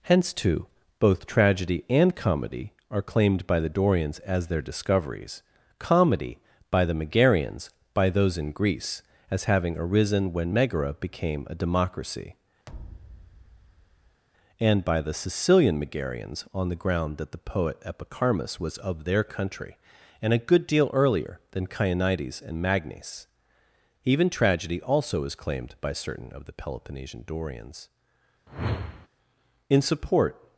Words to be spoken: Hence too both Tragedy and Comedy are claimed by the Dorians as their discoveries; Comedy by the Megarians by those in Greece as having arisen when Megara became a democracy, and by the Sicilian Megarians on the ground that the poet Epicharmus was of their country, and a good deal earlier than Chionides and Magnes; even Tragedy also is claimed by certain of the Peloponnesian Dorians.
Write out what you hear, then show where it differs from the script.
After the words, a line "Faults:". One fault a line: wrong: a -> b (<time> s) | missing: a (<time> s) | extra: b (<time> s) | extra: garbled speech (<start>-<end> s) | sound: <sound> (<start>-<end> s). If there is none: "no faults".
Hence too both Tragedy and Comedy are claimed by the Dorians as their discoveries; Comedy by the Megarians by those in Greece as having arisen when Megara became a democracy, and by the Sicilian Megarians on the ground that the poet Epicharmus was of their country, and a good deal earlier than Chionides and Magnes; even Tragedy also is claimed by certain of the Peloponnesian Dorians. In support
Faults:
sound: thud (12.7-14.2 s)
sound: whoosh (28.5-29.1 s)
extra: In support (29.7 s)